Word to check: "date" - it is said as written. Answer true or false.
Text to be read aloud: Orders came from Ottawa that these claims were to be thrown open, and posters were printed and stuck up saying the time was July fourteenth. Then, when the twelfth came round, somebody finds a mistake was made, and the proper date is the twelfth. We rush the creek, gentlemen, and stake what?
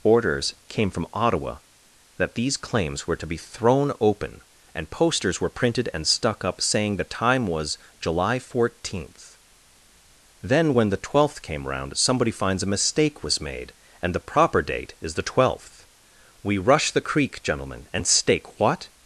true